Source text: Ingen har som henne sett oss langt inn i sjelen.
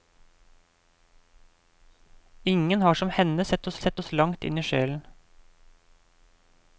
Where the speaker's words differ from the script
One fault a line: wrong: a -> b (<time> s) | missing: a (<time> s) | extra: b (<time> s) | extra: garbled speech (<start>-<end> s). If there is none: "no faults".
extra: sett oss (3.8 s)